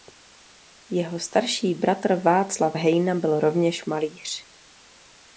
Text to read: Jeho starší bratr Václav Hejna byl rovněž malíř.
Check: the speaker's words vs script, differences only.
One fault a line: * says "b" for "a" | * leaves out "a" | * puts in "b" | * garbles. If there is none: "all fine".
all fine